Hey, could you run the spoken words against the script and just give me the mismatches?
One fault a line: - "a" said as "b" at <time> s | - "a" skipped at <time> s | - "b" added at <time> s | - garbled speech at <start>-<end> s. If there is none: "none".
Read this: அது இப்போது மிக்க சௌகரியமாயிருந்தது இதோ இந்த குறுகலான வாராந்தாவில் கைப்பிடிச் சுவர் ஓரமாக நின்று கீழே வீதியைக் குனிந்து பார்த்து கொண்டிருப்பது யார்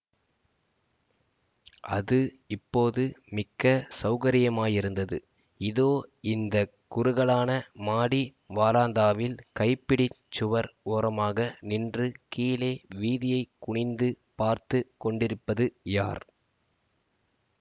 - "மாடி" added at 7.9 s